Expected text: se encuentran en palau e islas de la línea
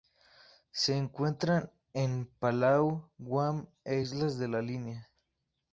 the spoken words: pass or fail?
fail